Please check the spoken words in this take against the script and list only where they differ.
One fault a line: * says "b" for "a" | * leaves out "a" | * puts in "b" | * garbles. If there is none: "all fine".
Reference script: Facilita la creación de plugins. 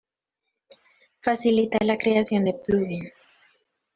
all fine